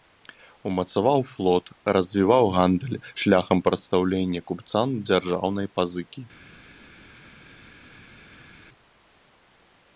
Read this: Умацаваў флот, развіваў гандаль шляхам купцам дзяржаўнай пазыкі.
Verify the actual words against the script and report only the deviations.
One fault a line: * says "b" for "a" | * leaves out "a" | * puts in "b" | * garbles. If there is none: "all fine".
* puts in "прадастаўлення"